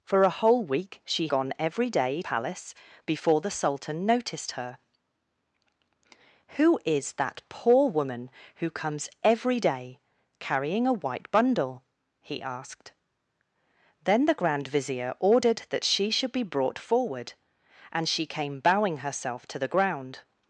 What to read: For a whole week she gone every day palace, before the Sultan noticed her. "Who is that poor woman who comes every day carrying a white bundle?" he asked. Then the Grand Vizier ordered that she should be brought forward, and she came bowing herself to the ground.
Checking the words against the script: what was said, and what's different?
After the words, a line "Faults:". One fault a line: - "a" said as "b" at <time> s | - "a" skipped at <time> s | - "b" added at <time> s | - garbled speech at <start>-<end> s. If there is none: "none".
For a whole week she gone every day palace, before the Sultan noticed her. "Who is that poor woman who comes every day carrying a white bundle?" he asked. Then the Grand Vizier ordered that she should be brought forward, and she came bowing herself to the ground.
Faults:
none